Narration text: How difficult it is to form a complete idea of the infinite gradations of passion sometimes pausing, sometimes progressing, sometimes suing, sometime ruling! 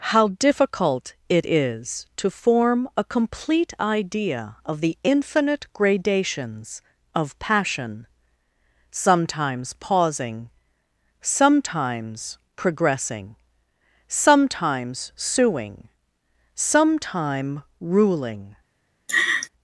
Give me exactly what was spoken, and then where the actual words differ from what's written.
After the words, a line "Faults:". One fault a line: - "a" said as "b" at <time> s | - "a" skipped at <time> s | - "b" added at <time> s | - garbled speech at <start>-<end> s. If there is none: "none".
How difficult it is to form a complete idea of the infinite gradations of passion sometimes pausing, sometimes progressing, sometimes suing, sometime ruling!
Faults:
none